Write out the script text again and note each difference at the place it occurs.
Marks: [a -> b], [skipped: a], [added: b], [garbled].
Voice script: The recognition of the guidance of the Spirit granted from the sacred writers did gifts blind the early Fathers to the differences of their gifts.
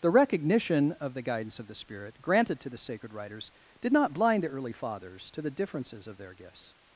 The recognition of the guidance of the Spirit granted [from -> to] the sacred writers did [gifts -> not] blind the early Fathers to the differences of their gifts.